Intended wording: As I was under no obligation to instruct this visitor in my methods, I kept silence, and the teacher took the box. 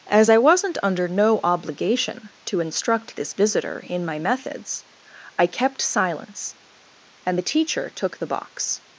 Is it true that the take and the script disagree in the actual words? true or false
true